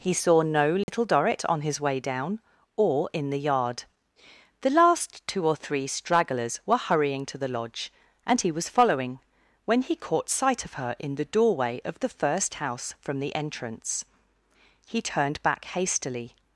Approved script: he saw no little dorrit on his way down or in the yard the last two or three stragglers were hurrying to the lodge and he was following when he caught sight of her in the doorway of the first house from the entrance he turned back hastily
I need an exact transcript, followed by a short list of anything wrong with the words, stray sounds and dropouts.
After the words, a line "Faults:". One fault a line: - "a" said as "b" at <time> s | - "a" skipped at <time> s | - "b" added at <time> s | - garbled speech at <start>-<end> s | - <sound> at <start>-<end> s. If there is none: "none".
he saw no little dorrit on his way down or in the yard the last two or three stragglers were hurrying to the lodge and he was following when he caught sight of her in the doorway of the first house from the entrance he turned back hastily
Faults:
- dropout at 0.8-0.9 s